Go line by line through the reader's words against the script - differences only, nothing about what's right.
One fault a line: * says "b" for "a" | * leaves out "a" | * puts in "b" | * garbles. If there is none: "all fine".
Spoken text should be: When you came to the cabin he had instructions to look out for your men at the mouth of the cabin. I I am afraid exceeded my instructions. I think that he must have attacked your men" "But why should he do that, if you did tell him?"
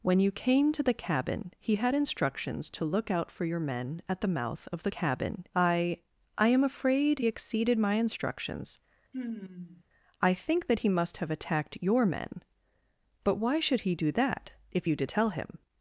all fine